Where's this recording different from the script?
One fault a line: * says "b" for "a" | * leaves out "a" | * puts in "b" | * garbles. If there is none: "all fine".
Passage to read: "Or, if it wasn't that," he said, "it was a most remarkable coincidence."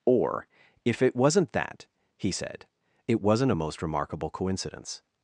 * says "wasn't" for "was"